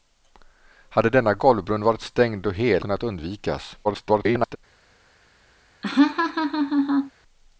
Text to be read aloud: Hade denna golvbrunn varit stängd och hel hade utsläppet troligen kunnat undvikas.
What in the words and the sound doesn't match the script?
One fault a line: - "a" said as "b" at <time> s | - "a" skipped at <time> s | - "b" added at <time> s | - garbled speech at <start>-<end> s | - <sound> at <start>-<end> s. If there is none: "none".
- "hade utsläppet troligen" skipped at 2.9 s
- garbled speech at 3.8-4.6 s
- laugh at 5.8-7.1 s